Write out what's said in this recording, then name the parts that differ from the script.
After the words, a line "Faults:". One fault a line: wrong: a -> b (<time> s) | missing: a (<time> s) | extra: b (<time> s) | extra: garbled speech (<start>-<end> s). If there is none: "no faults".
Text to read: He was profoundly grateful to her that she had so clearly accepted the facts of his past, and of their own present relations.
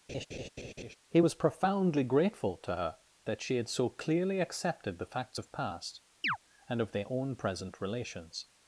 He was profoundly grateful to her that she had so clearly accepted the facts of past, and of their own present relations.
Faults:
missing: his (5.5 s)